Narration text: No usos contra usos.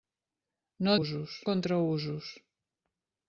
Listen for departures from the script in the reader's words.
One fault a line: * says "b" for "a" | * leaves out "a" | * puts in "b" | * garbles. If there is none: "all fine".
all fine